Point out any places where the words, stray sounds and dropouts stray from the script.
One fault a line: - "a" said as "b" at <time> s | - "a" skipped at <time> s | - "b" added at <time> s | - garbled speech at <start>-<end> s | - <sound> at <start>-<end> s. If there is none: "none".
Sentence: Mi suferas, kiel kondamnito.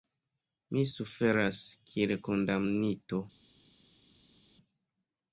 none